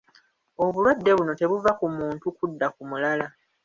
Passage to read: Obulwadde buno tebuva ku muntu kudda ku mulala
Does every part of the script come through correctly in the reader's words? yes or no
yes